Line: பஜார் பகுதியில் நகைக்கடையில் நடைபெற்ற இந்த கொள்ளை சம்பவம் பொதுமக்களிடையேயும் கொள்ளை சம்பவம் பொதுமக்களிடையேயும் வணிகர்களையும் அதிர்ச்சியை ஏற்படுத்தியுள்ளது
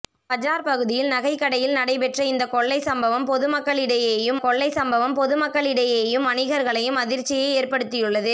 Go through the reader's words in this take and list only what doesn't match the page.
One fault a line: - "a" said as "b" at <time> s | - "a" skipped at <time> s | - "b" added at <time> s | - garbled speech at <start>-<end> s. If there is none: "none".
none